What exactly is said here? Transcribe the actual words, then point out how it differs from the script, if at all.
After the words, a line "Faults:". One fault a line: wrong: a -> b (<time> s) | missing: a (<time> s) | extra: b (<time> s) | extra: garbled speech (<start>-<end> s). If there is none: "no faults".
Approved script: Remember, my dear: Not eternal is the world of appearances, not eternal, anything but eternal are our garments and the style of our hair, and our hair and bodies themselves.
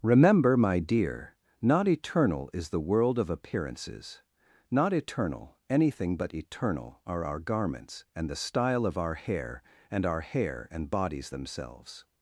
Remember, my dear: Not eternal is the world of appearances, not eternal, anything but eternal are our garments and the style of our hair, and our hair and bodies themselves.
Faults:
no faults